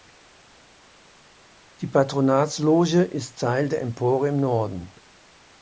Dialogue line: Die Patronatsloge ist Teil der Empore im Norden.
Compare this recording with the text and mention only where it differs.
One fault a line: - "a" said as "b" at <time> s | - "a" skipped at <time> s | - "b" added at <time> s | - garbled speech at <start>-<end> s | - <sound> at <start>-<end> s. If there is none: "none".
none